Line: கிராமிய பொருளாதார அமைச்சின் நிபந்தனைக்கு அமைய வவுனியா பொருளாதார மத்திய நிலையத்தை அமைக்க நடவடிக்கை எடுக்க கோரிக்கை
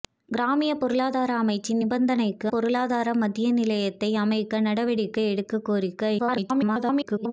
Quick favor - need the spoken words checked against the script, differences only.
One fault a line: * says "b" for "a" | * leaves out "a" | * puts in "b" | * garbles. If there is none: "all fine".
* leaves out "அமைய வவுனியா"
* garbles